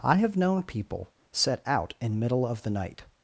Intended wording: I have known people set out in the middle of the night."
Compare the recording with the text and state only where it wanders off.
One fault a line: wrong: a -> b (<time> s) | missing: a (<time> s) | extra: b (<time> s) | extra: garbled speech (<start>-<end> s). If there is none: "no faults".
missing: the (2.2 s)